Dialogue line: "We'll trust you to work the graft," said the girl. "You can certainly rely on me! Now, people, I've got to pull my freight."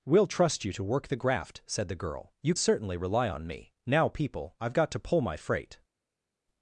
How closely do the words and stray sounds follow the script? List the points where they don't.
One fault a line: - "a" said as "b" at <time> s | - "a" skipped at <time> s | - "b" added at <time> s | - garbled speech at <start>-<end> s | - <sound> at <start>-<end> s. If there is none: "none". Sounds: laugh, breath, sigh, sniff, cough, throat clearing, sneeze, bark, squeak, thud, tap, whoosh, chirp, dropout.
- "can" skipped at 2.5 s